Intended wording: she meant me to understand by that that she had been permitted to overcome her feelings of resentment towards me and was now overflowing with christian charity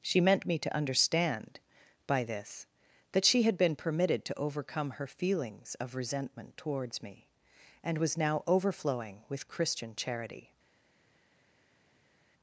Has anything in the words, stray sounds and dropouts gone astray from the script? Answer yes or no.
yes